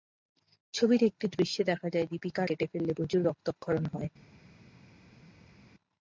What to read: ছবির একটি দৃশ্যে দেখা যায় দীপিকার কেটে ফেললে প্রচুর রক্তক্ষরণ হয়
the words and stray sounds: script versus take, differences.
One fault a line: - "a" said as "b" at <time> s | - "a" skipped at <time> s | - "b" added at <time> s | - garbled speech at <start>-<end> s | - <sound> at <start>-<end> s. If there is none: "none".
none